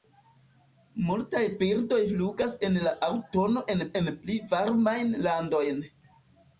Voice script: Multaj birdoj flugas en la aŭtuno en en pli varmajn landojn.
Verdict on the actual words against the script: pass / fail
pass